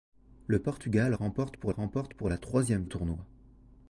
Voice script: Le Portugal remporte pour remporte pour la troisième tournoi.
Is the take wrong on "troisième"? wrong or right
right